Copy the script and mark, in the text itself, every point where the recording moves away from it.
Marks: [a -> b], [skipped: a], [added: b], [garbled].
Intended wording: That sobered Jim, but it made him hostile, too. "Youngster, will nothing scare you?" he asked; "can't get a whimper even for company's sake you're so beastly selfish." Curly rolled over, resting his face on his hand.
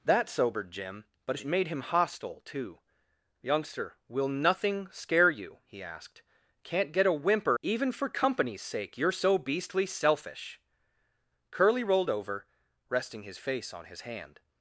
That sobered Jim, but it made him hostile, too. "Youngster, will nothing scare you?" he asked; "can't get a whimper even for company's sake you're so beastly selfish." Curly rolled over, resting his face on his hand.